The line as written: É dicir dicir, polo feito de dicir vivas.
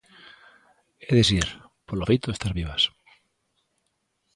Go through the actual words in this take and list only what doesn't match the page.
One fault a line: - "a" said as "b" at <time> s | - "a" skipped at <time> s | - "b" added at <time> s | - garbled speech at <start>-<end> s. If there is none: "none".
- "dicir" skipped at 1.5 s
- "dicir" said as "estar" at 2.4 s